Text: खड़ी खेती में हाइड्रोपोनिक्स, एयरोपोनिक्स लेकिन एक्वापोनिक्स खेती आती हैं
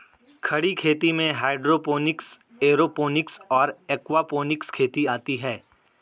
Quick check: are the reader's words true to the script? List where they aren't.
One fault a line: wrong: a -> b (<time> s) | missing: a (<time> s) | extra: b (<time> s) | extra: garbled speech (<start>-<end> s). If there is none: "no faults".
wrong: लेकिन -> और (3.5 s)